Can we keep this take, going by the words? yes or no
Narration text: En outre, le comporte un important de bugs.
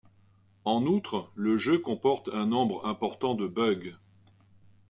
no